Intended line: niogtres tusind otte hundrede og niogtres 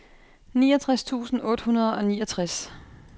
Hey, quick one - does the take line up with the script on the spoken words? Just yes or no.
yes